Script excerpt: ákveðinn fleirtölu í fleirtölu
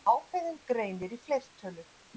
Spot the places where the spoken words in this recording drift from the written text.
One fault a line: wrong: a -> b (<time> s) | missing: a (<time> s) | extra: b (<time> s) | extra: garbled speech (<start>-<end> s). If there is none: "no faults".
wrong: fleirtölu -> greinir (0.7 s)